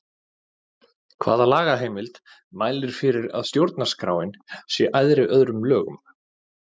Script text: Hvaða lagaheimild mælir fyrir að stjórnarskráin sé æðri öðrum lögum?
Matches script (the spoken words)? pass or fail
pass